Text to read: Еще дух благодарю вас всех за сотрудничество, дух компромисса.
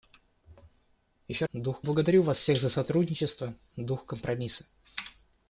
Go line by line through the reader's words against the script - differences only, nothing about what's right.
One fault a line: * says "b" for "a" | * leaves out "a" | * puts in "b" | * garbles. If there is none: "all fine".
all fine